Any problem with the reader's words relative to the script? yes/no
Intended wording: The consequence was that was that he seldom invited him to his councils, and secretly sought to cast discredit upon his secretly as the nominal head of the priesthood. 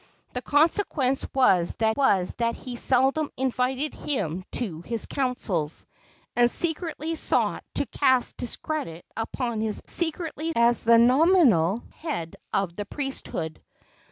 no